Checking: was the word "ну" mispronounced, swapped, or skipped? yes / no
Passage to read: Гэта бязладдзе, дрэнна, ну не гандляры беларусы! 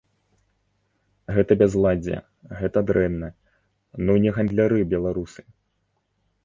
no